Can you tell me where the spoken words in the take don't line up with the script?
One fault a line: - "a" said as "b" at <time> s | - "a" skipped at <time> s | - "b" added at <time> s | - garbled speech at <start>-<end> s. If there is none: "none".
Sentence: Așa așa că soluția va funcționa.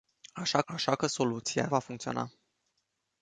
none